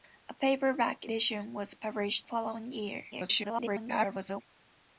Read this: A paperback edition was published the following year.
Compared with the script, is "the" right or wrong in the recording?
wrong